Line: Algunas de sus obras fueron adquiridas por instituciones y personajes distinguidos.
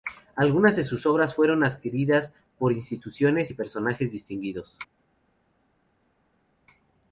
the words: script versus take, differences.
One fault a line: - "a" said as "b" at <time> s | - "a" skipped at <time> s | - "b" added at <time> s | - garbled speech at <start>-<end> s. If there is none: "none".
none